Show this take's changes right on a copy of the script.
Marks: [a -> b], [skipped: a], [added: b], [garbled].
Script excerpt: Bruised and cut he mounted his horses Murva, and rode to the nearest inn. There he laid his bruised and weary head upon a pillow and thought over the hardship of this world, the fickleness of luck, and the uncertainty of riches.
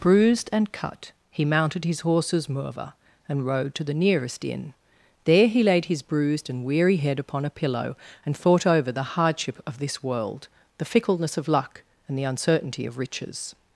Bruised and cut he mounted his horses Murva, and rode to the nearest inn. There he laid his bruised and weary head upon a pillow and thought over the hardship of this world, the fickleness of luck, and the uncertainty of riches.